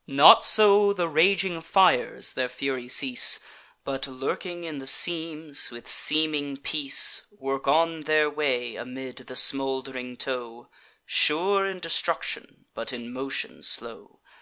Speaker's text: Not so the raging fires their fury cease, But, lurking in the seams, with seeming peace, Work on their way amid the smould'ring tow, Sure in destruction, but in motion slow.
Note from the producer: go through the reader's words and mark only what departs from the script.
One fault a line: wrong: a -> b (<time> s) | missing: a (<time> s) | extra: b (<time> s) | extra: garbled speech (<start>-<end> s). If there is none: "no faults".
no faults